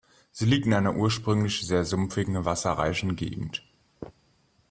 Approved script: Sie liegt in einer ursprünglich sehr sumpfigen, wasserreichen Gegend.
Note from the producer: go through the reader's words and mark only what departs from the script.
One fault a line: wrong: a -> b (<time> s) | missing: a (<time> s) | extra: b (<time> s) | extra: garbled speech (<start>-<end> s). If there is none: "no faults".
no faults